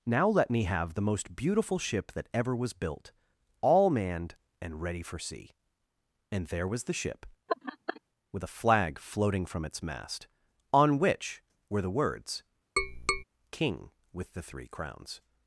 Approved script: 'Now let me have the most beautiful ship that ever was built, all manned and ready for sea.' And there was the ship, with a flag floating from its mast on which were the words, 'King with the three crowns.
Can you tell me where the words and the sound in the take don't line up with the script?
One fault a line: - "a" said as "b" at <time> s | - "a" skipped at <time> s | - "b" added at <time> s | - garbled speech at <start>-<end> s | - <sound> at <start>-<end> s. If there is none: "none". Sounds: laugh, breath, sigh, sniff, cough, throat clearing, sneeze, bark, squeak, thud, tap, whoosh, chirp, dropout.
- laugh at 7.5-8.0 s
- tap at 12.8-13.2 s